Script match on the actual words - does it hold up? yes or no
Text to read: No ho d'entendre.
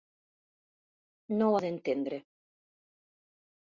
yes